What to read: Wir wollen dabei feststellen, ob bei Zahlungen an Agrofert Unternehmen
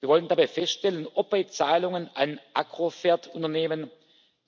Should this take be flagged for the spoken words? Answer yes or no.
no